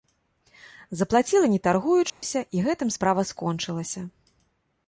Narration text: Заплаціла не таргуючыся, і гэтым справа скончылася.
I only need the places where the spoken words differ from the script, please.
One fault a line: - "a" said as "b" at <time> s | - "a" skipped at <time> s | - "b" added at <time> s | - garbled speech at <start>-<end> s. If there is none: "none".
none